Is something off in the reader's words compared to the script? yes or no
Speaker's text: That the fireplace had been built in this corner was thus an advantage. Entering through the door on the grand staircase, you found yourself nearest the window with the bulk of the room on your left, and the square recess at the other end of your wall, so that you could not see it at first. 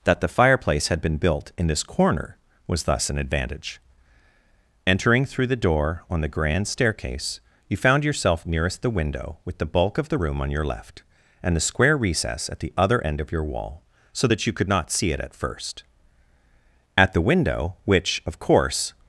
yes